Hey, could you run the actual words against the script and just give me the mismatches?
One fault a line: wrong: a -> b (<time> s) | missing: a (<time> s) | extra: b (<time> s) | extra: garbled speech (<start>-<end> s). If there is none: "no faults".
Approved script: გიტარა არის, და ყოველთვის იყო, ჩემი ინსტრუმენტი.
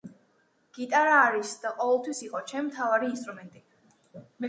extra: მთავარი (2.7 s)